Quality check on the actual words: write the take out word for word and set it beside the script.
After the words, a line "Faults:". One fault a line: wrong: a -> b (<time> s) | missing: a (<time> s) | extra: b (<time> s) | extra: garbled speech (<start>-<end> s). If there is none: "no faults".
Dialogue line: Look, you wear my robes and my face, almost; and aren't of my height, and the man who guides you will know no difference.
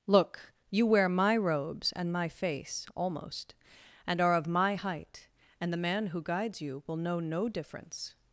Look, you wear my robes and my face, almost; and are of my height, and the man who guides you will know no difference.
Faults:
wrong: aren't -> are (4.2 s)